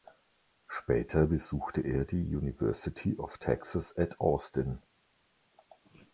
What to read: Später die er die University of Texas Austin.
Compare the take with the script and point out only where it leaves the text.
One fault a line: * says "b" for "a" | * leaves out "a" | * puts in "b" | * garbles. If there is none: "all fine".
* says "besuchte" for "die"
* puts in "at"